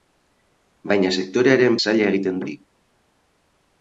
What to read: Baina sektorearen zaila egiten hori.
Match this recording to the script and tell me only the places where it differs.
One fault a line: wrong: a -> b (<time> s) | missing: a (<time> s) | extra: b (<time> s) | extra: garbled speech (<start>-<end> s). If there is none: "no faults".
no faults